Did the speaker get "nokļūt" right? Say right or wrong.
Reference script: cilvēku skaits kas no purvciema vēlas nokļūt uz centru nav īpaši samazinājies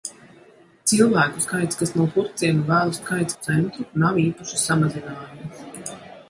wrong